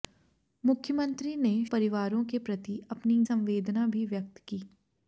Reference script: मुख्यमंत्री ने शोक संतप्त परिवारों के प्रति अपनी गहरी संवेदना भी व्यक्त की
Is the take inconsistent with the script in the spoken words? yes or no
yes